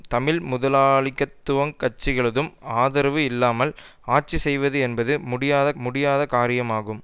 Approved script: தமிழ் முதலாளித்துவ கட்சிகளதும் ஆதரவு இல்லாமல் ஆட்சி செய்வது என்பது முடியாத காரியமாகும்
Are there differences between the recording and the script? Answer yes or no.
yes